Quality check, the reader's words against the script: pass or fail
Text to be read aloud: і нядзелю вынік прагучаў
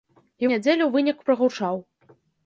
pass